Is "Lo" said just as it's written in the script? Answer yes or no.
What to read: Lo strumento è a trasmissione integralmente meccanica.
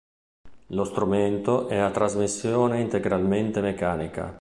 yes